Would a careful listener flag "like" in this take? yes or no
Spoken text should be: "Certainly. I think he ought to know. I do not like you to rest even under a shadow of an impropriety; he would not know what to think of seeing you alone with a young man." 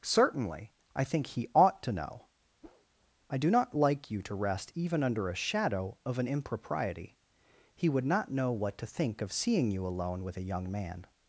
no